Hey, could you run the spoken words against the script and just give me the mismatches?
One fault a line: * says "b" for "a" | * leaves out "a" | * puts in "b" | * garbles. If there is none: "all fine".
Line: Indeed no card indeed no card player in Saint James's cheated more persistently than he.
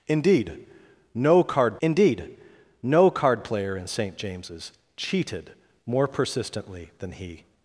all fine